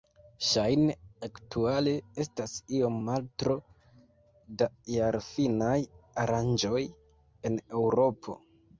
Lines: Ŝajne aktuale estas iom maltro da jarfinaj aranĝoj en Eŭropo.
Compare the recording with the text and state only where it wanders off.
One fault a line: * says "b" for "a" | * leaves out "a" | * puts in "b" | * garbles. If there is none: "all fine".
all fine